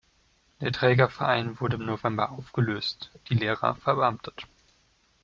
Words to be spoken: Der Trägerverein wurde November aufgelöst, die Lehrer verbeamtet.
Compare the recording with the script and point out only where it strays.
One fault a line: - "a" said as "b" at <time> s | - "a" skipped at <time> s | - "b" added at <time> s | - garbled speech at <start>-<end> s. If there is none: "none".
- "im" added at 1.7 s